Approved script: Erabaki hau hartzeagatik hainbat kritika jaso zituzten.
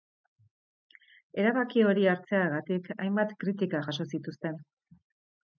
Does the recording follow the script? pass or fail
fail